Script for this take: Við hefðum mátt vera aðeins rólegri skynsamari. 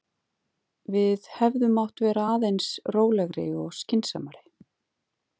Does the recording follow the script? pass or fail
fail